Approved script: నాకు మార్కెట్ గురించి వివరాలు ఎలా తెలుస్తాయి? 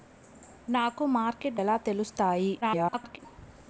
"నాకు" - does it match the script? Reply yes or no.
yes